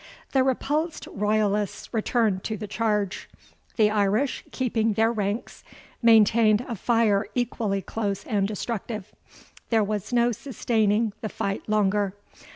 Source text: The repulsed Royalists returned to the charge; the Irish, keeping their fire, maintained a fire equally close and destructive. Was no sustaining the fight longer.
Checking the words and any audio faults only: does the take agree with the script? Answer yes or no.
no